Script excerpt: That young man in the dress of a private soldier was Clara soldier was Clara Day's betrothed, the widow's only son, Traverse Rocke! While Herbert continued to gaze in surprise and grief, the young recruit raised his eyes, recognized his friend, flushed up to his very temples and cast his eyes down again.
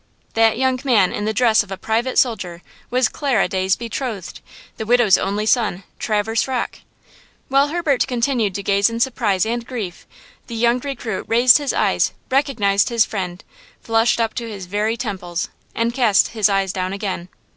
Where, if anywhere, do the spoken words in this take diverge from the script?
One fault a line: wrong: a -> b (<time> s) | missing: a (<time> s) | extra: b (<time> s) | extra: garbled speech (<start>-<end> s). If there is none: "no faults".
missing: soldier was Clara (3.5 s)